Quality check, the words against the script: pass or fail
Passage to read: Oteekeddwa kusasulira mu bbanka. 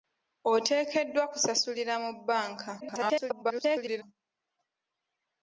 fail